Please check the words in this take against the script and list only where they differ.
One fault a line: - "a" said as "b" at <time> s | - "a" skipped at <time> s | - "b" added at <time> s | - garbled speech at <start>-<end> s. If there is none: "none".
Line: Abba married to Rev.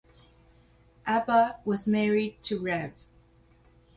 - "was" added at 1.6 s